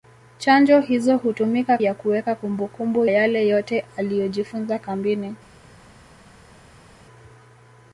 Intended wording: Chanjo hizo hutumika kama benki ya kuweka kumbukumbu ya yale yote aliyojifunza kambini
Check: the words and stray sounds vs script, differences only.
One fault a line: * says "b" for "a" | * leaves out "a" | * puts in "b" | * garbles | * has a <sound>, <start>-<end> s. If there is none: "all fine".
* leaves out "kama benki"
* leaves out "ya"